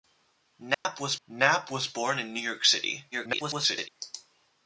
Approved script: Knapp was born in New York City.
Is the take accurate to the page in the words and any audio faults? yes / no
no